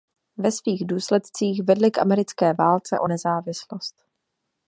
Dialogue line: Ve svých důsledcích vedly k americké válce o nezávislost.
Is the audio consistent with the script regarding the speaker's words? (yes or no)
yes